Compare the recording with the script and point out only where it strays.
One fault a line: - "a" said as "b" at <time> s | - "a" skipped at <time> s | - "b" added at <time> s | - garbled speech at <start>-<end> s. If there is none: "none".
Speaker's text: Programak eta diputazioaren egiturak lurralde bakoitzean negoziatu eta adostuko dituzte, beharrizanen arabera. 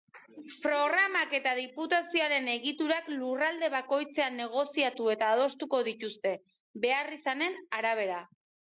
none